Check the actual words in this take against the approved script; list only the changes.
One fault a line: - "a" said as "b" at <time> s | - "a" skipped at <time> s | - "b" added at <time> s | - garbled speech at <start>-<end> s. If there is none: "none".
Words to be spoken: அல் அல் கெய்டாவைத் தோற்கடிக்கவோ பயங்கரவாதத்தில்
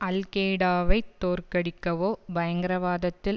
- "அல்" skipped at 0.2 s